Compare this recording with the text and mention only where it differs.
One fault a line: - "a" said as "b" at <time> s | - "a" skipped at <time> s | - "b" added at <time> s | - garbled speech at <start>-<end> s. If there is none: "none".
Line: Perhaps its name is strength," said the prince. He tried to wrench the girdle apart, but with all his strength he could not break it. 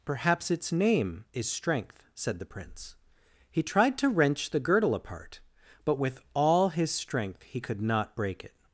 none